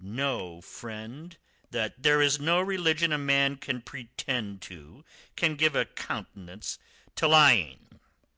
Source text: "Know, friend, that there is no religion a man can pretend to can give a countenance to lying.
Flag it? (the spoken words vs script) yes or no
no